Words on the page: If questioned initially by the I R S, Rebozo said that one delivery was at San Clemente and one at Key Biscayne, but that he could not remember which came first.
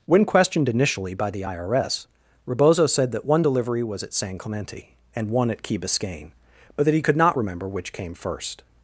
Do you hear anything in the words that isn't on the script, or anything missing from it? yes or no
yes